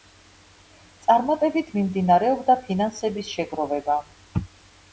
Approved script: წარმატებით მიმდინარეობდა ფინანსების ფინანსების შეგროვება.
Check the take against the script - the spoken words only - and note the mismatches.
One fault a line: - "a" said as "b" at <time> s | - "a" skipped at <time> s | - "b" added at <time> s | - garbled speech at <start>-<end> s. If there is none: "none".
- "ფინანსების" skipped at 3.3 s